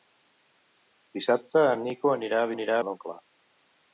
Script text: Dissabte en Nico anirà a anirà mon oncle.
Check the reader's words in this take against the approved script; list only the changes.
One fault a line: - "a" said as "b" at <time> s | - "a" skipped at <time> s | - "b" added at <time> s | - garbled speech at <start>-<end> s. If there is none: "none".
none